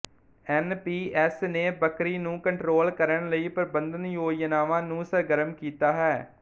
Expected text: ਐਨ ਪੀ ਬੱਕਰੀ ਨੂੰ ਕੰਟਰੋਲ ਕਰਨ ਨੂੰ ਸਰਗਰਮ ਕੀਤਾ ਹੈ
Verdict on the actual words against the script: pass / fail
fail